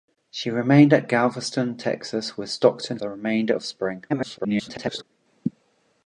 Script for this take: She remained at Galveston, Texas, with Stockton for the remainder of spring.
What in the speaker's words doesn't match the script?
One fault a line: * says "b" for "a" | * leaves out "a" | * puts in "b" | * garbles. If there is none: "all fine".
* leaves out "for"
* garbles